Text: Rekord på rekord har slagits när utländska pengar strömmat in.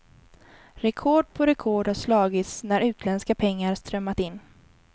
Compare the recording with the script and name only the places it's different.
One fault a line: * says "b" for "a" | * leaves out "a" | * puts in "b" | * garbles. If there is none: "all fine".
all fine